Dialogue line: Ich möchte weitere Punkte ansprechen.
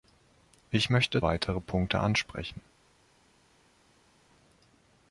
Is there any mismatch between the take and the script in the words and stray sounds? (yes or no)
no